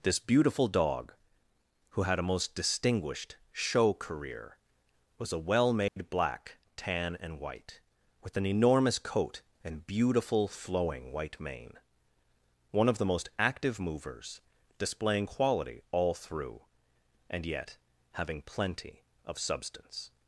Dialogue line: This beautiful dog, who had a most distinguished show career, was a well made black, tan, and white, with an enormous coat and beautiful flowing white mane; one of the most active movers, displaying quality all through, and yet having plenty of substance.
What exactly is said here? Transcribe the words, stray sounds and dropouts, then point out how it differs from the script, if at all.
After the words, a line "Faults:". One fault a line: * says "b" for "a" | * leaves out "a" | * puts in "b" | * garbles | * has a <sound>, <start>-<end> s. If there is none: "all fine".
This beautiful dog, who had a most distinguished show career, was a well made black, tan, and white, with an enormous coat and beautiful flowing white mane; one of the most active movers, displaying quality all through, and yet having plenty of substance.
Faults:
* has a dropout, 5.9-6.0 s